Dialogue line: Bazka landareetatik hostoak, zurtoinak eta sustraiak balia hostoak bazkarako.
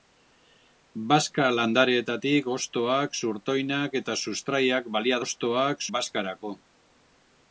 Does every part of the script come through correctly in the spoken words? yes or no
yes